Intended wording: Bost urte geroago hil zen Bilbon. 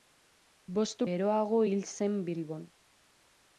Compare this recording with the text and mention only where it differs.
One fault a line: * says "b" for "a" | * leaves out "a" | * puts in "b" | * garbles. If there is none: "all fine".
* leaves out "urte"